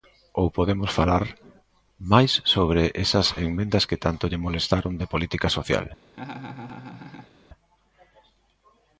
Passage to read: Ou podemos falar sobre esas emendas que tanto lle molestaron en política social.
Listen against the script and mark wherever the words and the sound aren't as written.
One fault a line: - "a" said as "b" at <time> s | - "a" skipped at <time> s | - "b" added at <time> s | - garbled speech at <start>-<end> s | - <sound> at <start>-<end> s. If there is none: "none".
- "máis" added at 2.1 s
- "en" said as "de" at 5.0 s
- laugh at 6.1-7.3 s